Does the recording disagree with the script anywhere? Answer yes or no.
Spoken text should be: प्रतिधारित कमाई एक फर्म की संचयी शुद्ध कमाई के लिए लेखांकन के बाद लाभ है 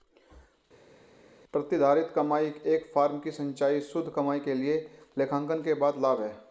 no